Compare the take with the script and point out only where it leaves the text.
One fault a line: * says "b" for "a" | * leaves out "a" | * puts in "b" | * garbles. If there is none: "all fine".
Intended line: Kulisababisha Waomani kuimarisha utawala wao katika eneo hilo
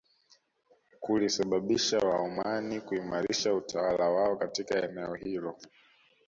all fine